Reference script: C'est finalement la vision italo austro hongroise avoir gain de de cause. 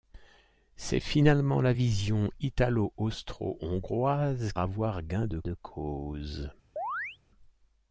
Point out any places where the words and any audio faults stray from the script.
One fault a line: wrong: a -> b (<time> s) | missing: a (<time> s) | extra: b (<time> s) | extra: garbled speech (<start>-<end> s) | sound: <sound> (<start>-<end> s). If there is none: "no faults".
sound: chirp (6.8-7.2 s)